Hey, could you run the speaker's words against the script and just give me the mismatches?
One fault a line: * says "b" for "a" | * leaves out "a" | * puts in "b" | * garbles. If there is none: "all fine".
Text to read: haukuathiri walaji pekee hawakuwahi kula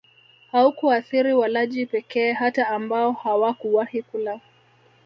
* puts in "hata ambao"